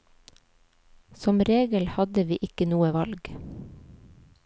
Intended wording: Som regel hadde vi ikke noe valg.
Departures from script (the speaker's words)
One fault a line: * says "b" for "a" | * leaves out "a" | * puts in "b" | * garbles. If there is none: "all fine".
all fine